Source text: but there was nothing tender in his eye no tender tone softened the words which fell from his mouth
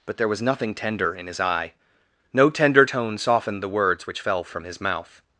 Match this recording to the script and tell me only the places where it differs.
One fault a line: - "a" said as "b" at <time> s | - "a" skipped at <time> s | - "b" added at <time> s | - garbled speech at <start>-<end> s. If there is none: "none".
none